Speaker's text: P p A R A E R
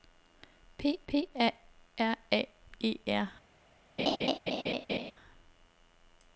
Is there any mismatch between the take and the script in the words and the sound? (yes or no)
yes